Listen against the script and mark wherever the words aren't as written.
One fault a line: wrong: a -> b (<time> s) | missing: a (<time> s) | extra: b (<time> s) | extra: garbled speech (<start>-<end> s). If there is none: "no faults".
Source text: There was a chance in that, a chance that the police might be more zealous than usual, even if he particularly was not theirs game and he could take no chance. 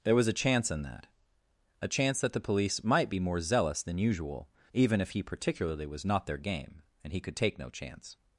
wrong: theirs -> their (6.2 s)